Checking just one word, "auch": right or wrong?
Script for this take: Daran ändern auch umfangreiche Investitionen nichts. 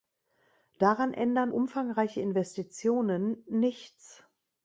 wrong